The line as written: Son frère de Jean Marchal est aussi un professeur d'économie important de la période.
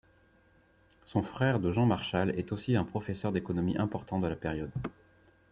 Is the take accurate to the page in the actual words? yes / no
yes